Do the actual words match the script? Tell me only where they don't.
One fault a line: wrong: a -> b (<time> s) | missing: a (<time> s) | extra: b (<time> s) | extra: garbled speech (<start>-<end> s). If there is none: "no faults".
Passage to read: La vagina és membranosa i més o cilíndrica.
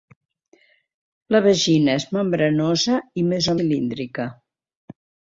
no faults